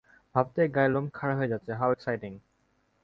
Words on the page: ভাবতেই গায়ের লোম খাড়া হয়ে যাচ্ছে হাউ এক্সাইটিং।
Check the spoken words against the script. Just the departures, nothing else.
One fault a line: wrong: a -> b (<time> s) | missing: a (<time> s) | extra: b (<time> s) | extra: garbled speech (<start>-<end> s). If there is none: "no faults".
no faults